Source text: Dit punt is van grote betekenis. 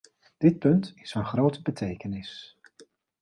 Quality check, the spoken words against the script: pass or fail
pass